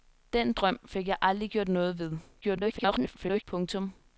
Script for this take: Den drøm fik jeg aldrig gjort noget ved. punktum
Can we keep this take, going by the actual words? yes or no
no